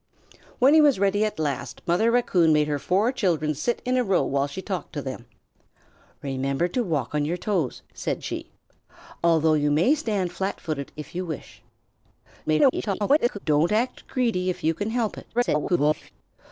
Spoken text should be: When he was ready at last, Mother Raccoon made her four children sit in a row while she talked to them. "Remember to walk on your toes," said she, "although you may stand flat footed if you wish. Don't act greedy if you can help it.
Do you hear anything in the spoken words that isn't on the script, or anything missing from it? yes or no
yes